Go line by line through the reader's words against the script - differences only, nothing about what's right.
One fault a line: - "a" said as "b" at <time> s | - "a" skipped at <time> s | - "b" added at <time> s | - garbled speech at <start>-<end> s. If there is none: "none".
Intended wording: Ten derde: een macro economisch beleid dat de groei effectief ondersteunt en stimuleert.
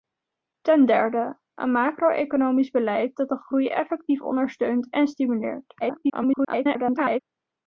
- garbled speech at 5.8-7.2 s